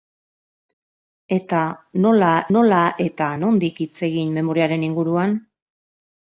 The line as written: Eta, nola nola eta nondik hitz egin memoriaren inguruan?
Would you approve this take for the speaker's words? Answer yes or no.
yes